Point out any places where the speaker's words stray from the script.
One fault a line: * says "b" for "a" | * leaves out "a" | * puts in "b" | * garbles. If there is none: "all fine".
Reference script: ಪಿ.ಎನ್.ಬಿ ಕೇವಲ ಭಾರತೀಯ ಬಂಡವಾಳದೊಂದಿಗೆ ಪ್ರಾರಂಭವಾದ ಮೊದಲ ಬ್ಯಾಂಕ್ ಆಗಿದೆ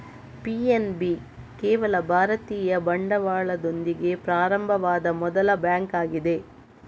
all fine